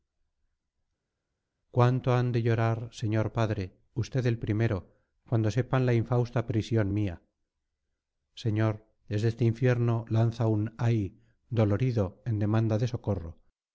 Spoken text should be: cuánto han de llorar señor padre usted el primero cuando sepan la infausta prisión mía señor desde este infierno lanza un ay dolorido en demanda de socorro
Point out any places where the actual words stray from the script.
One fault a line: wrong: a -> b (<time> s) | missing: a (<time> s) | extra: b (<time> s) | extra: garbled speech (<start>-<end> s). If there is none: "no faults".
no faults